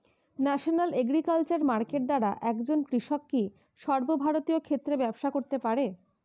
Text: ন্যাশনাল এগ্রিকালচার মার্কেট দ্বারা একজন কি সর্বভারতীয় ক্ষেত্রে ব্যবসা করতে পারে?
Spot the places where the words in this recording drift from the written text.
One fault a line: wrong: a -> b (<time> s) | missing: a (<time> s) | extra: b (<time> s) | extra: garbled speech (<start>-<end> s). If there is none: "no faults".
extra: কৃষক (2.9 s)